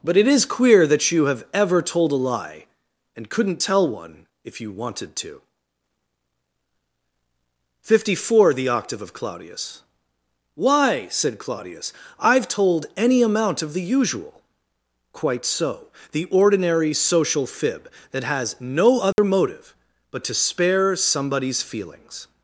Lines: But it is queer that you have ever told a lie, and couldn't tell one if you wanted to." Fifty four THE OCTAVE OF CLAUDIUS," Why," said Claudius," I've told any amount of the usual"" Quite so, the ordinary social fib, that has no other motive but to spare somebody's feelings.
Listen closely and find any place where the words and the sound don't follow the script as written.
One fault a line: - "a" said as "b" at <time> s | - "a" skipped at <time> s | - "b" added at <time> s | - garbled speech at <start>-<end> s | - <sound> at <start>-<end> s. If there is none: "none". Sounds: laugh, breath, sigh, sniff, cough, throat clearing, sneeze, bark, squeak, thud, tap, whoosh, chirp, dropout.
- dropout at 19.1-19.2 s